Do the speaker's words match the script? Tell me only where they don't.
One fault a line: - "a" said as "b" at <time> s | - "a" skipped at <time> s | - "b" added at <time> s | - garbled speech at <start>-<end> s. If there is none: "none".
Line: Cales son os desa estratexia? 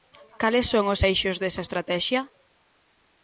- "eixos" added at 1.1 s